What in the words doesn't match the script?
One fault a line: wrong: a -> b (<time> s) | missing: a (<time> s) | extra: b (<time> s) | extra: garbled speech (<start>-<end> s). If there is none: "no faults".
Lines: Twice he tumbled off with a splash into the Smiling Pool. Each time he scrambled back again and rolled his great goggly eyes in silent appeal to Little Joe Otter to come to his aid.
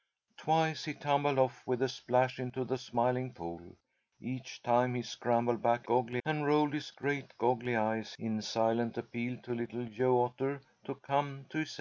wrong: again -> goggly (5.8 s)